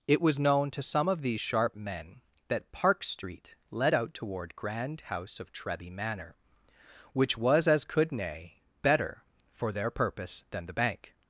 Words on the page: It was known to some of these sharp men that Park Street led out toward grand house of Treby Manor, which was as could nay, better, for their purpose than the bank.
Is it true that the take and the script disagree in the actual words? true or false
false